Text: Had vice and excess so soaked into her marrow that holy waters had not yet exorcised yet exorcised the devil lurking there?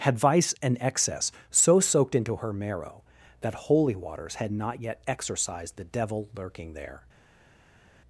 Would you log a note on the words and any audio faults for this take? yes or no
yes